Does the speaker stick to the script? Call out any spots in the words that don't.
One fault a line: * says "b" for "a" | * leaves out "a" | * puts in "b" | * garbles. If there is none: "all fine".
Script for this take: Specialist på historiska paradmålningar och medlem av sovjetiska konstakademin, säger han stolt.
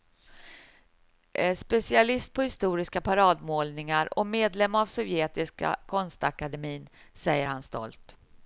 all fine